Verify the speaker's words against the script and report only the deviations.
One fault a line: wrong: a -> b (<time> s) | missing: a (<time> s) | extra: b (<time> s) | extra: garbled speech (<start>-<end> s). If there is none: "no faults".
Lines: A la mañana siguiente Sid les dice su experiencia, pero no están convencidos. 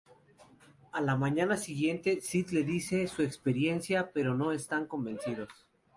no faults